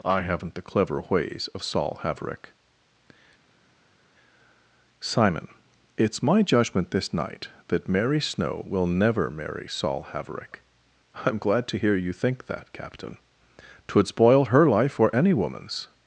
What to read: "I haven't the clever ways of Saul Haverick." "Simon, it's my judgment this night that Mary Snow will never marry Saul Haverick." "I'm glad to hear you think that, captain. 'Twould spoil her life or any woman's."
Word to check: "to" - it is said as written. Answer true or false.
true